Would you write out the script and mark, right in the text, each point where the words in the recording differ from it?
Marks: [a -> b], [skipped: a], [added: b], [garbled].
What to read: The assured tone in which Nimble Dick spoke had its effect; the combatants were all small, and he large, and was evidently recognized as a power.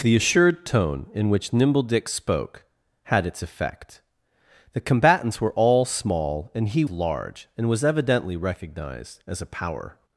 The assured tone in which Nimble Dick spoke had its effect; the combatants were all small, and he large, and was evidently recognized as a power.